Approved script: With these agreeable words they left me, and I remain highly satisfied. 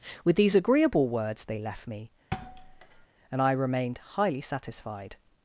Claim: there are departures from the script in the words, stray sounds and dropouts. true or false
true